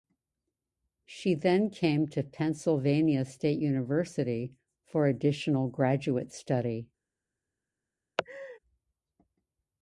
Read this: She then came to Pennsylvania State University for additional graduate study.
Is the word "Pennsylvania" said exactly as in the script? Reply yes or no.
yes